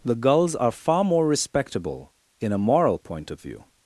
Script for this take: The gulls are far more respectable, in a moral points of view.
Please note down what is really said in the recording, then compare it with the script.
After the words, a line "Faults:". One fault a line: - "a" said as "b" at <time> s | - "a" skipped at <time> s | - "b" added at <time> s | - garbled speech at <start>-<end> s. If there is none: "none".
The gulls are far more respectable, in a moral point of view.
Faults:
- "points" said as "point" at 3.0 s